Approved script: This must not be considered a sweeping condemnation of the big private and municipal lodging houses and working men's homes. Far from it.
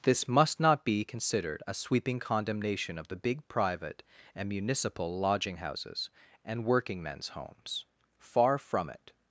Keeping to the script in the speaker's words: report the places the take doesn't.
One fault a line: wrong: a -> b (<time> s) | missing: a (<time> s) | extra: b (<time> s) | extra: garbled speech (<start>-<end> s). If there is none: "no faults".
no faults